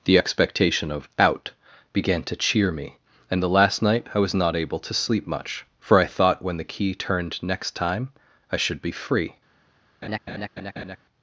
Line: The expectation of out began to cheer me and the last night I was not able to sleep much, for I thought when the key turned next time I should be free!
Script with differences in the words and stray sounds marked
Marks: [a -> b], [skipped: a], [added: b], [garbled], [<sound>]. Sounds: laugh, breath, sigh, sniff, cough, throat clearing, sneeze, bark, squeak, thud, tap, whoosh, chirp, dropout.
The expectation of out began to cheer me and the last night I was not able to sleep much, for I thought when the key turned next time I should be free! [laugh]